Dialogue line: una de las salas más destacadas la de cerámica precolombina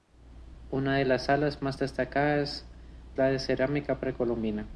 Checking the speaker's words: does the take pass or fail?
pass